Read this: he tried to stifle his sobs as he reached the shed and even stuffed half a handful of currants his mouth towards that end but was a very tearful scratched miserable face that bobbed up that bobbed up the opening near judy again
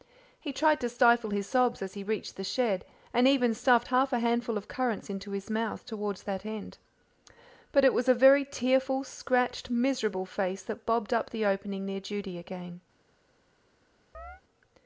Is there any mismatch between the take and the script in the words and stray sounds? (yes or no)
yes